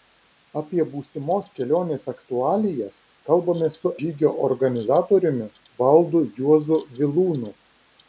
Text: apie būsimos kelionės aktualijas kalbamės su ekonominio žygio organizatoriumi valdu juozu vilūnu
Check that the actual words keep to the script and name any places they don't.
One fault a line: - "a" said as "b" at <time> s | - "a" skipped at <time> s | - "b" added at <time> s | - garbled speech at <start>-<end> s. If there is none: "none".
- "ekonominio" skipped at 3.9 s